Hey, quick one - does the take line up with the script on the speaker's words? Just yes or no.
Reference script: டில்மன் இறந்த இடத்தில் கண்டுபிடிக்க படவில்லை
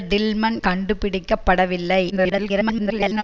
no